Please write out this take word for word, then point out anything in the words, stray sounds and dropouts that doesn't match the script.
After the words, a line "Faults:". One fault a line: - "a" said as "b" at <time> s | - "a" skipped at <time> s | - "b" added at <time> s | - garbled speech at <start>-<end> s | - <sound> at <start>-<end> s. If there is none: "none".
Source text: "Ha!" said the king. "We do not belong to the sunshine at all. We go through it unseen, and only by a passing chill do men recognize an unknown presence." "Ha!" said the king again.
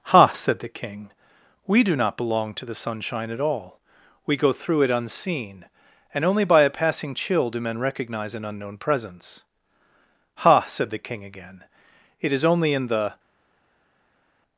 "Ha!" said the king. "We do not belong to the sunshine at all. We go through it unseen, and only by a passing chill do men recognize an unknown presence." "Ha!" said the king again. "It is only in the
Faults:
- "It is only in the" added at 12.2 s